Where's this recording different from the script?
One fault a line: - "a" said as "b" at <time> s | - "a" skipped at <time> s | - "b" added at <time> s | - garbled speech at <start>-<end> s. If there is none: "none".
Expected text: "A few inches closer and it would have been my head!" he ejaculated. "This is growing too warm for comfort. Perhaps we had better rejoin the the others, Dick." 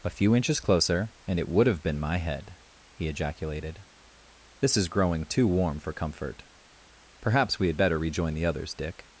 - "the" skipped at 8.5 s